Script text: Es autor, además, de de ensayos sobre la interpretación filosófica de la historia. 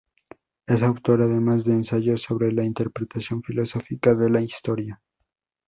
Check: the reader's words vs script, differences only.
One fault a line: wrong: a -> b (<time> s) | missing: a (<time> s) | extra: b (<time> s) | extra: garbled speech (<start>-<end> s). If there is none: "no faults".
missing: de (1.7 s)